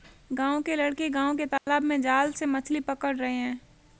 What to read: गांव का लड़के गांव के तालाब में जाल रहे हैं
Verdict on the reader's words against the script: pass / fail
fail